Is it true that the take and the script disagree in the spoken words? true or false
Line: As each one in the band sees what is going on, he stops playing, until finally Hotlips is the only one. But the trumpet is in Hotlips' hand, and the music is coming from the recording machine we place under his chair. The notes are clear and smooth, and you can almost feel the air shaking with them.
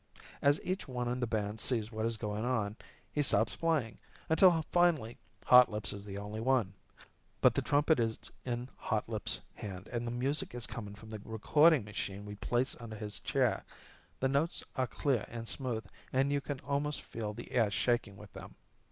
false